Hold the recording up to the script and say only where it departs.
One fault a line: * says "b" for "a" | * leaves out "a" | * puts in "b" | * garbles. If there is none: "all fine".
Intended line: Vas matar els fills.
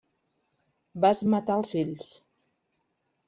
all fine